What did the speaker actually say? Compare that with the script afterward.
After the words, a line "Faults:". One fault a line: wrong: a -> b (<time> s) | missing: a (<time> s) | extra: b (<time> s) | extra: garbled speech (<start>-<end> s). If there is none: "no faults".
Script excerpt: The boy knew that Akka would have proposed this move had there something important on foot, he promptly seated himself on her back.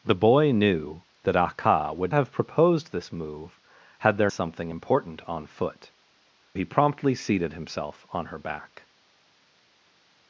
The boy knew that Akka would have proposed this move had there something important on foot, he promptly seated himself on her back.
Faults:
no faults